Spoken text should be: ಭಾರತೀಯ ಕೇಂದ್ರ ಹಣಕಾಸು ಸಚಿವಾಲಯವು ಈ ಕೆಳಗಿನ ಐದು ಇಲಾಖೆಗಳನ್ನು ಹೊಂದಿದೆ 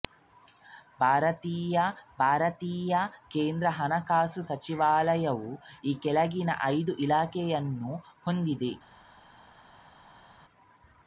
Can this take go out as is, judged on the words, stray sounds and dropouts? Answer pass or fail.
fail